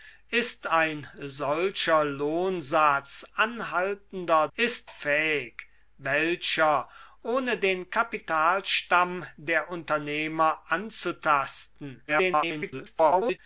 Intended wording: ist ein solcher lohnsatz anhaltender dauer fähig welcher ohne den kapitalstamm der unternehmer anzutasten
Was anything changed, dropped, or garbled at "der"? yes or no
no